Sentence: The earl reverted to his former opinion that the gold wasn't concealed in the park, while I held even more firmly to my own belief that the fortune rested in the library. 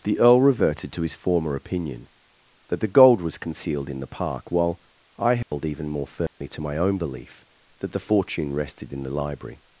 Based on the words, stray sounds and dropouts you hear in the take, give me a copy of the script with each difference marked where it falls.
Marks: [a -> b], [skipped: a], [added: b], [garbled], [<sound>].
The earl reverted to his former opinion that the gold [wasn't -> was] concealed in the park, while I held [dropout] even more firmly [dropout] to my own belief that the fortune rested in the library.